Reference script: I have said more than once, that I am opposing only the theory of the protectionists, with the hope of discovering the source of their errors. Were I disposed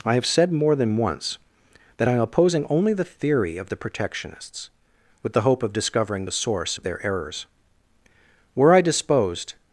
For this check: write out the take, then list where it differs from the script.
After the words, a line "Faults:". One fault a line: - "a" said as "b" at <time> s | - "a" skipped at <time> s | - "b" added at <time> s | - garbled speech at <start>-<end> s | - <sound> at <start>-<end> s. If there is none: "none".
I have said more than once, that I am opposing only the theory of the protectionists, with the hope of discovering the source of their errors. Were I disposed
Faults:
none